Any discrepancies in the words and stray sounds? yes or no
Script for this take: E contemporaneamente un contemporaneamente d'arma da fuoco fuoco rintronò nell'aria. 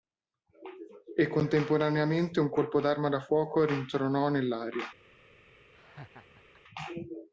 yes